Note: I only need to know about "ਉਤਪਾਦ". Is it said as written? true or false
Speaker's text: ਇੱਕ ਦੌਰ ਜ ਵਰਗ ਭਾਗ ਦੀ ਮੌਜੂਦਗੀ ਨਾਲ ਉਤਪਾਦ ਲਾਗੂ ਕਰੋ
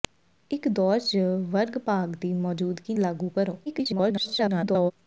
false